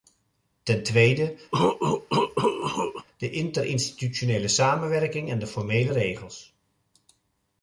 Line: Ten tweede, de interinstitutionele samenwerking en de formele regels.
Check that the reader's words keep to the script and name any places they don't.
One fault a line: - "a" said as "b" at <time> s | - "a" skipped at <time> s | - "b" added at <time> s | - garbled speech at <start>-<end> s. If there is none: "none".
none